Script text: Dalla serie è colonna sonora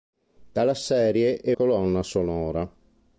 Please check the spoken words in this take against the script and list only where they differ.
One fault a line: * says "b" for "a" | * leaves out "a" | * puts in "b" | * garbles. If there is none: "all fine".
all fine